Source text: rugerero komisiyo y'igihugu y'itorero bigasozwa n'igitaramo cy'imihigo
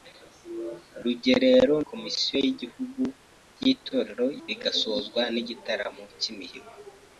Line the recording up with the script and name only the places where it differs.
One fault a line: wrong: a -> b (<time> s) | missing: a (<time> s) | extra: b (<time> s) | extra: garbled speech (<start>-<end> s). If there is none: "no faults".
no faults